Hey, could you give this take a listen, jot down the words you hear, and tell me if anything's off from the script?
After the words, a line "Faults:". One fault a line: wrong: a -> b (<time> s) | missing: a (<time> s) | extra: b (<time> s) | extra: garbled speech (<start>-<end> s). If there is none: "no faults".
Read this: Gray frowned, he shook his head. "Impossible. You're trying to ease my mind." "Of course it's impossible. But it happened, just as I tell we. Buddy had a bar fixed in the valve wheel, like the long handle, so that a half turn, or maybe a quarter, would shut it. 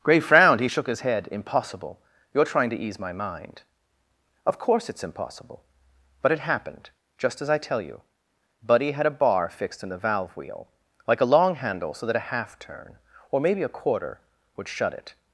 Gray frowned, he shook his head. "Impossible. You're trying to ease my mind." "Of course it's impossible. But it happened, just as I tell you. Buddy had a bar fixed in the valve wheel, like a long handle, so that a half turn, or maybe a quarter, would shut it.
Faults:
wrong: we -> you (7.8 s)
wrong: the -> a (11.2 s)